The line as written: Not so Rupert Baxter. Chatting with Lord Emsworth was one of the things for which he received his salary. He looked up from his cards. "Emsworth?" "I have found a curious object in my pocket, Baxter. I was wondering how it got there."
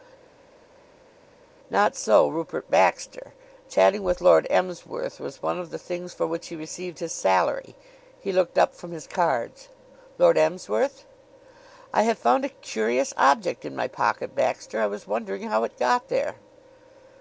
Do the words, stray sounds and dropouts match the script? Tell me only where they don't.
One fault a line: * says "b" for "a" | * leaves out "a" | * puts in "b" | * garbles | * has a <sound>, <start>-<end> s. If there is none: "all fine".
* puts in "Lord"